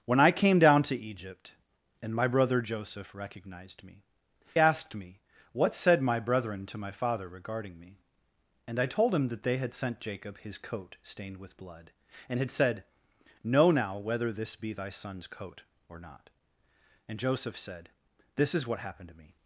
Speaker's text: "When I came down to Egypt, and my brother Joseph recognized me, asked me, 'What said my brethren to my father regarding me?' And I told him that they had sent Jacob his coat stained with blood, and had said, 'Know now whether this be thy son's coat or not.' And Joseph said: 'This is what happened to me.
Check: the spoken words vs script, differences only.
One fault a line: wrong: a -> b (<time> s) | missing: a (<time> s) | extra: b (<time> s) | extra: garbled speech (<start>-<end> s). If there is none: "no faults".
no faults